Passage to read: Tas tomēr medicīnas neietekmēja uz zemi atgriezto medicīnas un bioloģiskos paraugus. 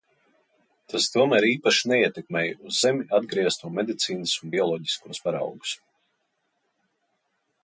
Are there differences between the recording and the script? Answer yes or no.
yes